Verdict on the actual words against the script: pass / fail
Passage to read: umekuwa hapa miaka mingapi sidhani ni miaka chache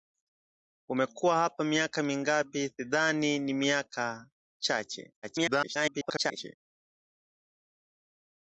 fail